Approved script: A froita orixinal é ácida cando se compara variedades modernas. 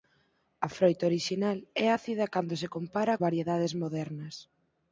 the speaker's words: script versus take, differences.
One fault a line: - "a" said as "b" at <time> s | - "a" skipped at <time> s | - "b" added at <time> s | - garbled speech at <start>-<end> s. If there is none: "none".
none